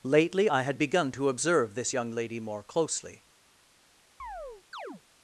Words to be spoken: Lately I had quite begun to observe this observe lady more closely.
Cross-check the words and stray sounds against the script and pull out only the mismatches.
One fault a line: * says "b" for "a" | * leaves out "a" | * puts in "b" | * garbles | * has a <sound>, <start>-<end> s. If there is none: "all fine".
* leaves out "quite"
* says "young" for "observe"
* has a chirp, 4.2-5.0 s